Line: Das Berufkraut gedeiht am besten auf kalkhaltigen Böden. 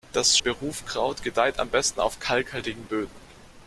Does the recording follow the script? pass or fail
pass